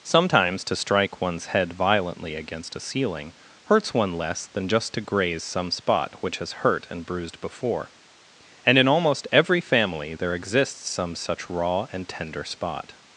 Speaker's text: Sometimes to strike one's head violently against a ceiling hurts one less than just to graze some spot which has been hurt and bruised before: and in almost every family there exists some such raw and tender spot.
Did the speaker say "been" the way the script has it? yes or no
no